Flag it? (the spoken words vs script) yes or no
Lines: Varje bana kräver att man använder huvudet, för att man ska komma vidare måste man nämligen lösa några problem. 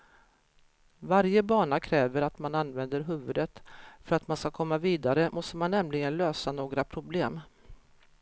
no